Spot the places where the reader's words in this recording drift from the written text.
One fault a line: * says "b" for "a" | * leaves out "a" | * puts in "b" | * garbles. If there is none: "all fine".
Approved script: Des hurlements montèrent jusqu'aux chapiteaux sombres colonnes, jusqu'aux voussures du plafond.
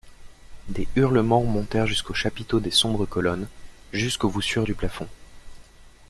* puts in "des"